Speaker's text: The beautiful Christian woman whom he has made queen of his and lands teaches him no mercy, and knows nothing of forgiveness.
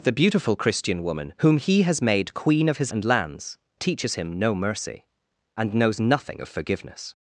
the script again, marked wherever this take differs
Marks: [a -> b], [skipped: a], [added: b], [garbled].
The beautiful Christian woman whom he has made queen of his and lands teaches him no mercy, and knows nothing of forgiveness.